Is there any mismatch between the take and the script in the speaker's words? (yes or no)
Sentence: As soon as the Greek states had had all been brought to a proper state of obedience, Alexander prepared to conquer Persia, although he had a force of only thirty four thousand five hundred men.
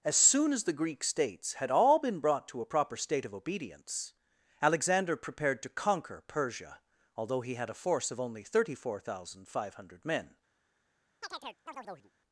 yes